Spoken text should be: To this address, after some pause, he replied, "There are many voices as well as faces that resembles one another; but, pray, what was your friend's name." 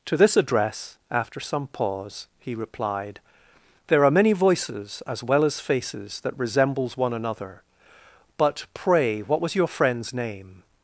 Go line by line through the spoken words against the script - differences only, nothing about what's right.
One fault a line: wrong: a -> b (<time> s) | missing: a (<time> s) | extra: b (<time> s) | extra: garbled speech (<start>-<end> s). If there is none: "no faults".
no faults